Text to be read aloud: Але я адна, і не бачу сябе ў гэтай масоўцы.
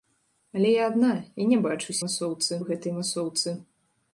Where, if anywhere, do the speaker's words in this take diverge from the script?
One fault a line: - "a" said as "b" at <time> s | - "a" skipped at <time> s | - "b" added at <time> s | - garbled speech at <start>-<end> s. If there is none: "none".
- "сябе" said as "масоўцы" at 2.0 s